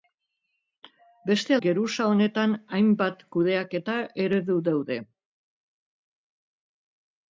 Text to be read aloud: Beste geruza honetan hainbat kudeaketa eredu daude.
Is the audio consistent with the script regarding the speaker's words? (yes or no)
yes